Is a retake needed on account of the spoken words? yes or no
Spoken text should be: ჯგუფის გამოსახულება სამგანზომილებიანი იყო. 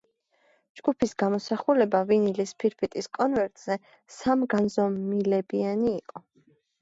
yes